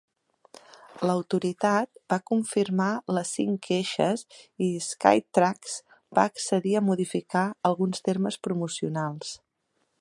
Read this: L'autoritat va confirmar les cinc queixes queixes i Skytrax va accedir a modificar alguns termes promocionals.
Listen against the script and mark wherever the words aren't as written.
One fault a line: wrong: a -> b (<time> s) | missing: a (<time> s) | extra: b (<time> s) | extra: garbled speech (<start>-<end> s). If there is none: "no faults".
missing: queixes (4.2 s)